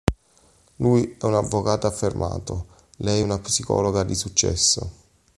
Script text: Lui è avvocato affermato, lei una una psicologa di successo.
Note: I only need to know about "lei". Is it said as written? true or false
true